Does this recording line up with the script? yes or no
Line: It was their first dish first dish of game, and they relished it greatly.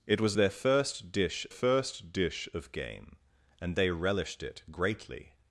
yes